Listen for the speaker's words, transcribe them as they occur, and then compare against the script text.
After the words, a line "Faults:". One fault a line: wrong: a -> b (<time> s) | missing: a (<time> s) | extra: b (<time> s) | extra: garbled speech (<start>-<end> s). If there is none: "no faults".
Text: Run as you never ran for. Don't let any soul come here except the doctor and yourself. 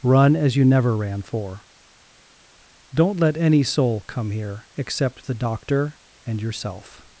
Run as you never ran for. Don't let any soul come here except the doctor and yourself.
Faults:
no faults